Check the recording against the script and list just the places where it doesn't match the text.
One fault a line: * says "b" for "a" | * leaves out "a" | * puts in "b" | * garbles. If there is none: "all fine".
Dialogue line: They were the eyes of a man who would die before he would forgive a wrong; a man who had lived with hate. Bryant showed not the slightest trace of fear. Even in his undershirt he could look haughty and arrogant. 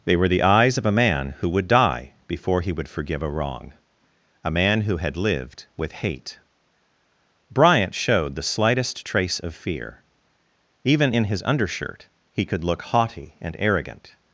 * leaves out "not"